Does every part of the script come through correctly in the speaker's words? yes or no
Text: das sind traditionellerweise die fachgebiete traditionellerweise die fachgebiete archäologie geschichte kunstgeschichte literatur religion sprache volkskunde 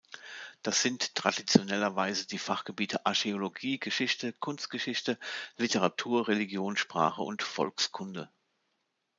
no